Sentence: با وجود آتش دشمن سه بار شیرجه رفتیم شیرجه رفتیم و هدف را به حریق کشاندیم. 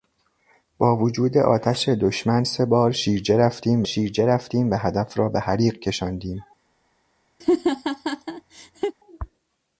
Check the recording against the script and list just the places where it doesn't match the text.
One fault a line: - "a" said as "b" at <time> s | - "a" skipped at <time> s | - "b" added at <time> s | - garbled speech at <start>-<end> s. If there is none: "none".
none